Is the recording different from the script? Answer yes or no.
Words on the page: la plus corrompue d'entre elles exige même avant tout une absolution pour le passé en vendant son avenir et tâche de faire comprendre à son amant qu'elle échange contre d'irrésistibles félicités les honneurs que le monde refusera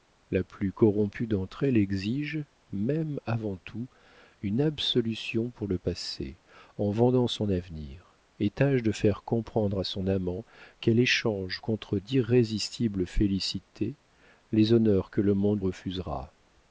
no